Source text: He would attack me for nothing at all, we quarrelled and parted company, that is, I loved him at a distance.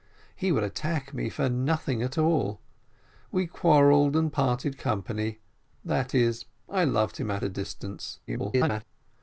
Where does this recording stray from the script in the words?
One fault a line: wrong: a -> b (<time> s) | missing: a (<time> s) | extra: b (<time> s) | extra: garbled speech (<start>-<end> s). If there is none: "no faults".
extra: garbled speech (8.3-8.8 s)